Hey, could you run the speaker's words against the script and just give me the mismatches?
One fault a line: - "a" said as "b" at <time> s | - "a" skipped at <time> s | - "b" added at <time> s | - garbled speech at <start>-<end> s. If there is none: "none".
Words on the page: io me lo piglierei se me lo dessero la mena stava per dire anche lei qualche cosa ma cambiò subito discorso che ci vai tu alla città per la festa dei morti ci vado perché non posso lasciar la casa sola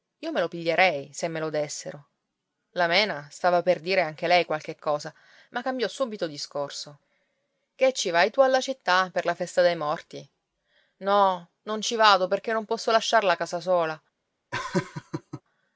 - "no non" added at 11.0 s